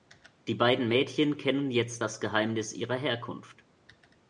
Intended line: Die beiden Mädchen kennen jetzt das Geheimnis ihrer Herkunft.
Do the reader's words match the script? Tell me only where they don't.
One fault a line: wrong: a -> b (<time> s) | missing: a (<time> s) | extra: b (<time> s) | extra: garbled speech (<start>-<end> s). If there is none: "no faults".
no faults